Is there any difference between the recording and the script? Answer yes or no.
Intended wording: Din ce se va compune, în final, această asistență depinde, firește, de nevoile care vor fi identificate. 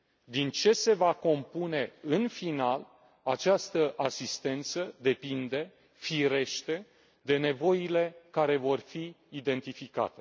no